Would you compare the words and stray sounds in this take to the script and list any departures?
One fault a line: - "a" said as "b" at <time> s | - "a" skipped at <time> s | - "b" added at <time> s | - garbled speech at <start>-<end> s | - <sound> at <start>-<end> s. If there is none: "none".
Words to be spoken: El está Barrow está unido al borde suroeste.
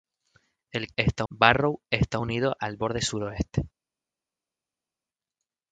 none